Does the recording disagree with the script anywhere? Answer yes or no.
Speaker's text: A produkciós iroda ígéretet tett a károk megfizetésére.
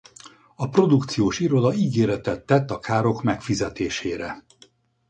no